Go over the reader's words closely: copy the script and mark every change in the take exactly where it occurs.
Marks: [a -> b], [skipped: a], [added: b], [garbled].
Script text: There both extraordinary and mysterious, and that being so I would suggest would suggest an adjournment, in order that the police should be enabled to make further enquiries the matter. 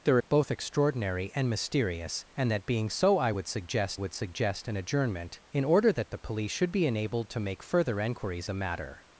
There both extraordinary and mysterious, and that being so I would suggest would suggest an adjournment, in order that the police should be enabled to make further enquiries the matter.